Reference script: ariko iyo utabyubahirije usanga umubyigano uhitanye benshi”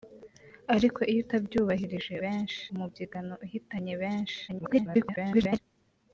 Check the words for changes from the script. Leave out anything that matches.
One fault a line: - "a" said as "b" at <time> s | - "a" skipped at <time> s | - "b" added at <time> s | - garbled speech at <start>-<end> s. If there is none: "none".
- "usanga" said as "benshi" at 2.2 s
- garbled speech at 4.5-5.6 s